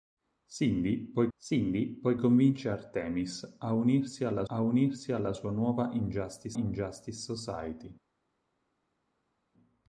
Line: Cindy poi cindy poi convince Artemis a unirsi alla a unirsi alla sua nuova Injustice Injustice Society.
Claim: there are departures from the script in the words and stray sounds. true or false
false